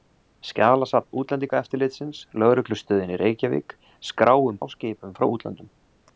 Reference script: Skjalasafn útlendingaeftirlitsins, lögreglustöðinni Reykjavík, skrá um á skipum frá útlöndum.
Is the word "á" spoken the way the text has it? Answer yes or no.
yes